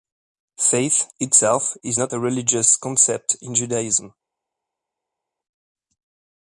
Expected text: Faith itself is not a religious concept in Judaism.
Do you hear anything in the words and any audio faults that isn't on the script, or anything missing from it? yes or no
no